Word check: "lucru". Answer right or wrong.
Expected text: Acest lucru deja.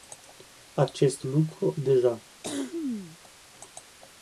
right